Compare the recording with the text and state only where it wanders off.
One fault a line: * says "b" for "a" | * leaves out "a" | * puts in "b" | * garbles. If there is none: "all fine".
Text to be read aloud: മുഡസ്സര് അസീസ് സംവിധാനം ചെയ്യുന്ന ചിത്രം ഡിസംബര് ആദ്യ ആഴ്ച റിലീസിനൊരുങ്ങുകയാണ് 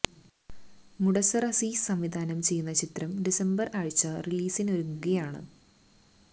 * leaves out "ആദ്യ"